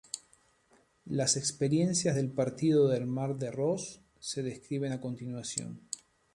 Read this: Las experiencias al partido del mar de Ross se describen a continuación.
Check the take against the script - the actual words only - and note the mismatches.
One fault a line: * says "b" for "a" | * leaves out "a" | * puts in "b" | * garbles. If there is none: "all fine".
* says "del" for "al"